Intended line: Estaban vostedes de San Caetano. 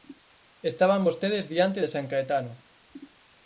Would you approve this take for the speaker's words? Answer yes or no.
no